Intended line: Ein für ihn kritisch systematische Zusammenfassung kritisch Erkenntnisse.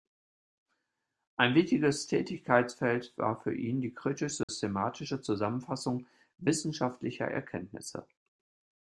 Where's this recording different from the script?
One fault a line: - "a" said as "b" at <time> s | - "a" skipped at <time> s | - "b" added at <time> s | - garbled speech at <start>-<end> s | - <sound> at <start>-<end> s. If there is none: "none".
- "wichtiges Tätigkeitsfeld war" added at 1.5 s
- "die" added at 3.8 s
- dropout at 4.4-4.5 s
- "kritisch" said as "wissenschaftlicher" at 6.4 s